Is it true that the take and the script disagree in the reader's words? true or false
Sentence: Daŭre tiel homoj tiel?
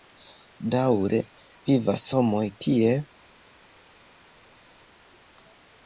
true